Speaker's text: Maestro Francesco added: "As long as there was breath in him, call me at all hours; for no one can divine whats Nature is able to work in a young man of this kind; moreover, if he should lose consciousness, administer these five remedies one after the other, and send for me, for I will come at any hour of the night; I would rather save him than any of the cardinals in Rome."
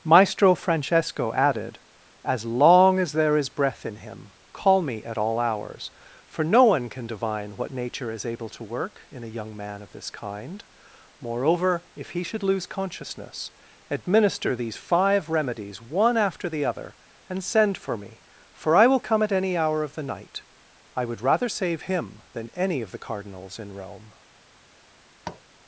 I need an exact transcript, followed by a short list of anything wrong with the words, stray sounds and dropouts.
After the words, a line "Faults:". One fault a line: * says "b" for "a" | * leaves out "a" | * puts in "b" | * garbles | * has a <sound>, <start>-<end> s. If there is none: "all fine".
Maestro Francesco added: "As long as there is breath in him, call me at all hours; for no one can divine what Nature is able to work in a young man of this kind; moreover, if he should lose consciousness, administer these five remedies one after the other, and send for me, for I will come at any hour of the night; I would rather save him than any of the cardinals in Rome."
Faults:
* says "is" for "was"
* says "what" for "whats"
* has a tap, 25.2-25.4 s